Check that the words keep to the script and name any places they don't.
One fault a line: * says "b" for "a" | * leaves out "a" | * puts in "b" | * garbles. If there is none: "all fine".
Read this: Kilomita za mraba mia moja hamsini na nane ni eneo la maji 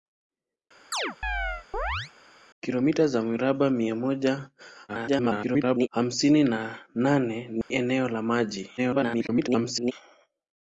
* garbles
* garbles